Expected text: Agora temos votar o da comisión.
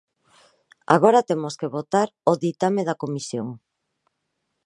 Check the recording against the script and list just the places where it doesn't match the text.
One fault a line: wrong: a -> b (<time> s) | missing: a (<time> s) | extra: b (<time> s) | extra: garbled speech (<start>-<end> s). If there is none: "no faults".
extra: que (1.6 s)
extra: ditame (2.4 s)